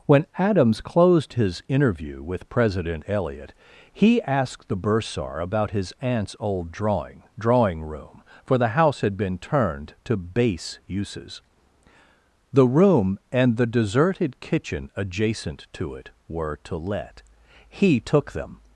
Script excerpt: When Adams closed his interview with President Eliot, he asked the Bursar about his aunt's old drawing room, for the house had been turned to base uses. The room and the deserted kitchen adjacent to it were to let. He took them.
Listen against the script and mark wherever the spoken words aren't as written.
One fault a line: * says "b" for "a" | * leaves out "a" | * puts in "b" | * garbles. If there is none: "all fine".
* puts in "drawing"